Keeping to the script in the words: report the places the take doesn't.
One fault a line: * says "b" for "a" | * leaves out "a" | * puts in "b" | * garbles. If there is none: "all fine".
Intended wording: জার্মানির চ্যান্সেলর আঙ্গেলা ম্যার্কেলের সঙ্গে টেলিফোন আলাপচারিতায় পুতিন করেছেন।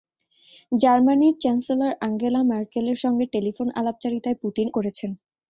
all fine